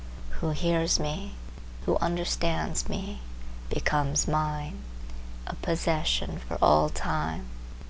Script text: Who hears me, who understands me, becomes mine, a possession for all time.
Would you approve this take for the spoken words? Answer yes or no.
yes